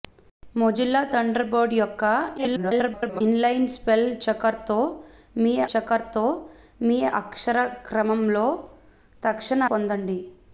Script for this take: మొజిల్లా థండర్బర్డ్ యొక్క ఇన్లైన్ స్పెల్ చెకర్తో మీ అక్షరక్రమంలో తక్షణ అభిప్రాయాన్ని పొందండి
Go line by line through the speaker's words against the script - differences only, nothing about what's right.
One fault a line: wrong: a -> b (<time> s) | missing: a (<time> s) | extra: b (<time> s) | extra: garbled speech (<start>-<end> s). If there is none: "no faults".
extra: garbled speech (2.4-3.2 s)
extra: చెకర్తో మీ (5.7 s)
missing: అభిప్రాయాన్ని (9.6 s)